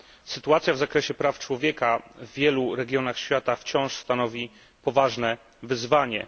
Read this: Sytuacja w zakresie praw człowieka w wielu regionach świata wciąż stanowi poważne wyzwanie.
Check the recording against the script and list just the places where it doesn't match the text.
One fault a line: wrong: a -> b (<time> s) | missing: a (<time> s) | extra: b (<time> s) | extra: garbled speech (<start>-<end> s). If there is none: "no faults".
no faults